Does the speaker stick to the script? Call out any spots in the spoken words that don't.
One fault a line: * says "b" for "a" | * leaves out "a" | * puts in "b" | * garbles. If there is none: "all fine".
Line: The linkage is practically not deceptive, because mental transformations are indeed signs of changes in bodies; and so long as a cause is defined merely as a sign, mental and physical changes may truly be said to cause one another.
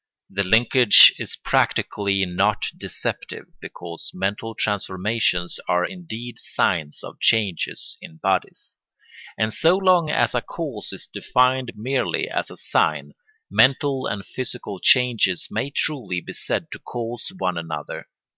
all fine